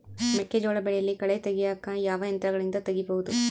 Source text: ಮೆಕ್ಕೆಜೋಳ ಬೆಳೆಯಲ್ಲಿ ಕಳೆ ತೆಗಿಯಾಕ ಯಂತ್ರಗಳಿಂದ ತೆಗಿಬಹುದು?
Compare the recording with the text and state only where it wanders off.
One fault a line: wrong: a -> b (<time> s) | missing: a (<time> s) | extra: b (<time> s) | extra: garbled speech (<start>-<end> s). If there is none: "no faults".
extra: ಯಾವ (2.0 s)